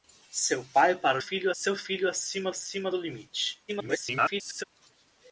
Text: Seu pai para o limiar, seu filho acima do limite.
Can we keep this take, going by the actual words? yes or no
no